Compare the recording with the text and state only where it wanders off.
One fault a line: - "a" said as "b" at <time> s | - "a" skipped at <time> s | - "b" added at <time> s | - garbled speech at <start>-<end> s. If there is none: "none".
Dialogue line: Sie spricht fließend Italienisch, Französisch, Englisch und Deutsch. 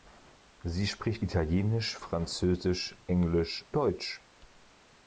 - "fließend" skipped at 1.2 s
- "und" skipped at 3.7 s